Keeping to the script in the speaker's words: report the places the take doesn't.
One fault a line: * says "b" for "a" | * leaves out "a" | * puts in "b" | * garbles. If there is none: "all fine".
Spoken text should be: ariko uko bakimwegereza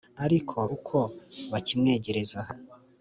all fine